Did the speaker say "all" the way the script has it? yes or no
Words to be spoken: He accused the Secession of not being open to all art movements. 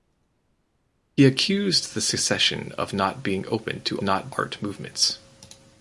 no